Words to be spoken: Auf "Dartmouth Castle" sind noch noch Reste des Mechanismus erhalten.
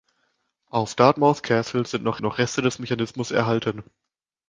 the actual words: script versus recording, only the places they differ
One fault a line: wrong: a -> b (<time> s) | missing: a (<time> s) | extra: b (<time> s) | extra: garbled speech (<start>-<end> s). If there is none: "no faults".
no faults